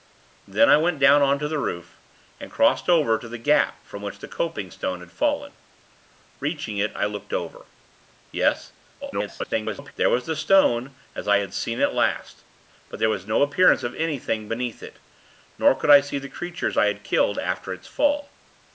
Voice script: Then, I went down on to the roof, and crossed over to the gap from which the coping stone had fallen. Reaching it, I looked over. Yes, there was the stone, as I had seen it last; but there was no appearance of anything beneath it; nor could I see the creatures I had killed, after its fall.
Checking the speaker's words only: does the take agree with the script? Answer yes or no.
no